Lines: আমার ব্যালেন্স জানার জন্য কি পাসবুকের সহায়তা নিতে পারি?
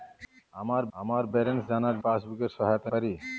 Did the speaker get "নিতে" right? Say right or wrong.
wrong